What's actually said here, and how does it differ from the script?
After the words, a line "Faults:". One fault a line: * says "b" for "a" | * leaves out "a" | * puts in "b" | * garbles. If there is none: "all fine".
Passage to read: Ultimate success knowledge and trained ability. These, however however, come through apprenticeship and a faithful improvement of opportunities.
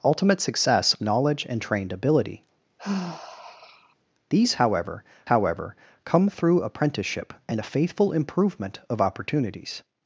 Ultimate success knowledge and trained ability. These, however however, come through apprenticeship and a faithful improvement of opportunities.
Faults:
all fine